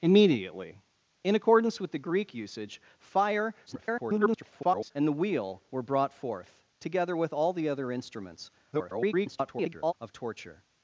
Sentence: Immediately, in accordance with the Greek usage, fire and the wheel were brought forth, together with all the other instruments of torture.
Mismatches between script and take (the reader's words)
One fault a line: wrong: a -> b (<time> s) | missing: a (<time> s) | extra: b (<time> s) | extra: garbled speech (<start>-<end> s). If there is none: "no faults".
extra: garbled speech (3.7-4.9 s)
extra: garbled speech (8.7-9.9 s)